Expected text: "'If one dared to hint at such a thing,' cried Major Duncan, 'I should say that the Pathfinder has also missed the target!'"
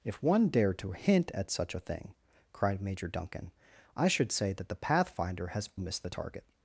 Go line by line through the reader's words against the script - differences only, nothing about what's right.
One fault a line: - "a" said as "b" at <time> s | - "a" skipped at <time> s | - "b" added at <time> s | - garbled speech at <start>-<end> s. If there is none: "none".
- "also" skipped at 5.7 s